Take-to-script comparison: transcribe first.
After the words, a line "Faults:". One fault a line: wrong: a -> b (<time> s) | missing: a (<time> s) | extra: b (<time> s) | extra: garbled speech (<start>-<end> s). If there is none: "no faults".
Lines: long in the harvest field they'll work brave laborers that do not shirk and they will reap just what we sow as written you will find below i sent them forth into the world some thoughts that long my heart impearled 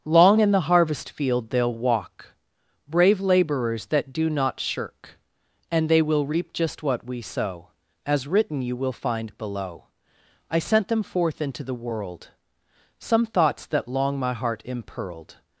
long in the harvest field they'll walk brave laborers that do not shirk and they will reap just what we sow as written you will find below i sent them forth into the world some thoughts that long my heart impearled
Faults:
wrong: work -> walk (1.7 s)